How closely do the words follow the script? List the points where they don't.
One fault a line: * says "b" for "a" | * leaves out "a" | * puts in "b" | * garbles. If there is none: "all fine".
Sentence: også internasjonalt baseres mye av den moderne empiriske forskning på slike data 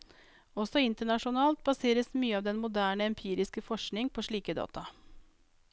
all fine